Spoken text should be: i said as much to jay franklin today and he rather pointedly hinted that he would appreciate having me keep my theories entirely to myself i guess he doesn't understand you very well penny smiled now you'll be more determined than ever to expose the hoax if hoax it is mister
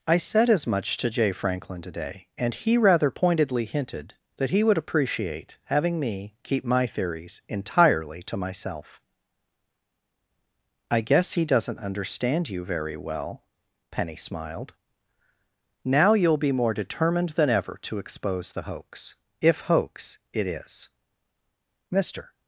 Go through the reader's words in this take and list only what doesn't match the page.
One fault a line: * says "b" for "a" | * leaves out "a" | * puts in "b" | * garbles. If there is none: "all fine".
all fine